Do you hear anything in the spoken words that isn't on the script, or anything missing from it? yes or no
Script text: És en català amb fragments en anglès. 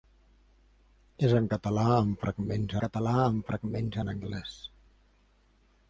yes